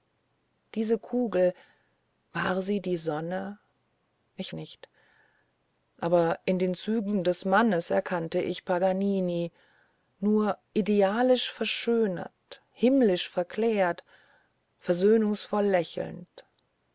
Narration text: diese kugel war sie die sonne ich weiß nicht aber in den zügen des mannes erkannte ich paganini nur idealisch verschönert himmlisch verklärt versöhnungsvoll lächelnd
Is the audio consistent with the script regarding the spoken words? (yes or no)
no